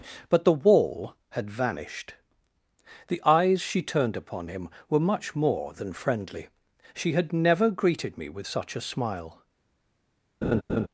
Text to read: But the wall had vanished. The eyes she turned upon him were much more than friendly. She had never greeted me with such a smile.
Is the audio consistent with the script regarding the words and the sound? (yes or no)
no